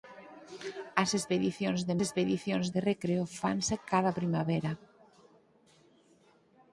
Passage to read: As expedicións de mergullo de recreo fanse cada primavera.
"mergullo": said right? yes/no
no